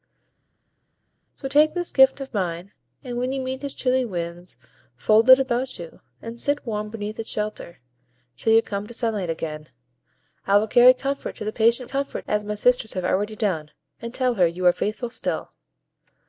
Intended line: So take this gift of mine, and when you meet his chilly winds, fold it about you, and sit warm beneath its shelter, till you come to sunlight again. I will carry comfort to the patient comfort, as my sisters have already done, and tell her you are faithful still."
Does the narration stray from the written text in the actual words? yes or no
no